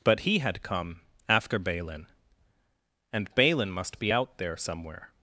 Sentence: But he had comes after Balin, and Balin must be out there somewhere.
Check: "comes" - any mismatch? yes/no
yes